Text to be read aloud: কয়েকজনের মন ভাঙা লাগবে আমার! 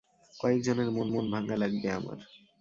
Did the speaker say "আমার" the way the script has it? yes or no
yes